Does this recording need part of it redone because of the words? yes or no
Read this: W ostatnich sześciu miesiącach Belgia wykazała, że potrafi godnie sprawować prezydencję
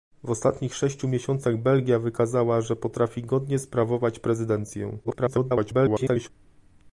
yes